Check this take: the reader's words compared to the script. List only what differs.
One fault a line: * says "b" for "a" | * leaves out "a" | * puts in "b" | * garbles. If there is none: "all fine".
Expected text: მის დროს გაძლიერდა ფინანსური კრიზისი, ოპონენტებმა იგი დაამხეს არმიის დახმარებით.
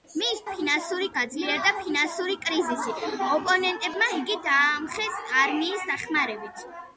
* says "ფინანსური" for "დროს"